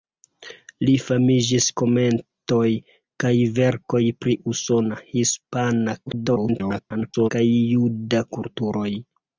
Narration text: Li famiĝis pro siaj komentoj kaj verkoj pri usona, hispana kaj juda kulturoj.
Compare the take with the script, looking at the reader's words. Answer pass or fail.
fail